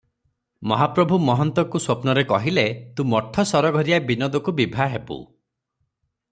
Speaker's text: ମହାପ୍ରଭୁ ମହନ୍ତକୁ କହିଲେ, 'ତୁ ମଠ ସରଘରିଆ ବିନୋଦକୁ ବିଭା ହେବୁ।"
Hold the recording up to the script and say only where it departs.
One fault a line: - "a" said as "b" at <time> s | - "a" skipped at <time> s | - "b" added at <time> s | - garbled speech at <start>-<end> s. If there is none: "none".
- "ସ୍ୱପ୍ନରେ" added at 1.8 s